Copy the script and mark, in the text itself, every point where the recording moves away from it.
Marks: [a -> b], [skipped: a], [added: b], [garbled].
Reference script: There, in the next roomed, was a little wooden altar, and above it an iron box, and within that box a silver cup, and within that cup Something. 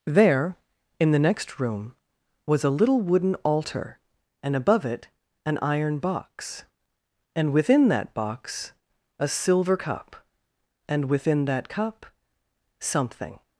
There, in the next [roomed, -> room] was a little wooden altar, and above it an iron box, and within that box a silver cup, and within that cup Something.